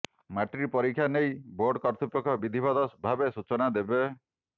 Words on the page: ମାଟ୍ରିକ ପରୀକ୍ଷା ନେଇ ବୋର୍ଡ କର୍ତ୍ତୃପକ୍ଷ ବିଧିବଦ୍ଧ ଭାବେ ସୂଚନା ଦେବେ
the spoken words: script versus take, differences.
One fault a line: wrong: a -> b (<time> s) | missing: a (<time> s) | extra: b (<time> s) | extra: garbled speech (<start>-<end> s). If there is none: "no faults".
no faults